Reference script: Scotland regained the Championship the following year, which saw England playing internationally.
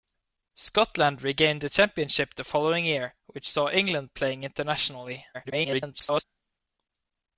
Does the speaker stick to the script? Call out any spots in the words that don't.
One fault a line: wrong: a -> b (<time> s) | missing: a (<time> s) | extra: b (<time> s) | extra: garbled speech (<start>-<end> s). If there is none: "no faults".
extra: garbled speech (5.3-6.2 s)